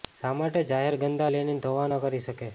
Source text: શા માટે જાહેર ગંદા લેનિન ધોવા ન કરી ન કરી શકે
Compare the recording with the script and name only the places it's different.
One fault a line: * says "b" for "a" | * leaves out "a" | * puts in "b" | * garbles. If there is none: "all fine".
* leaves out "ન કરી"